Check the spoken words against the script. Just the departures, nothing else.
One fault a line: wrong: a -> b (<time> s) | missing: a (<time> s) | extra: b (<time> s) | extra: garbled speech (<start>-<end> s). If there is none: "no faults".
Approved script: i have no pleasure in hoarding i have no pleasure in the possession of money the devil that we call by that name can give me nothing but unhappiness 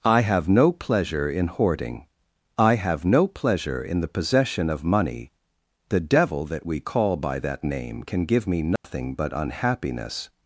no faults